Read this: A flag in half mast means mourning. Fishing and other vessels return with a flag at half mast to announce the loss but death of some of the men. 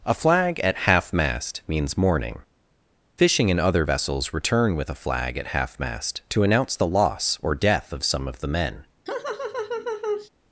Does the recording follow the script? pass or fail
fail